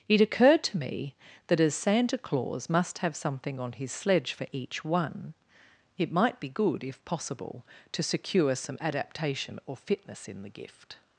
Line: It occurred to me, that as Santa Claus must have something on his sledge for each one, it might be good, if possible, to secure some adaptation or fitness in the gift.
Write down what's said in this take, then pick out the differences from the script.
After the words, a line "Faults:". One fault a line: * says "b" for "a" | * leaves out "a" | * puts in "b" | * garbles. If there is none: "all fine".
It occurred to me, that as Santa Claus must have something on his sledge for each one, it might be good, if possible, to secure some adaptation or fitness in the gift.
Faults:
all fine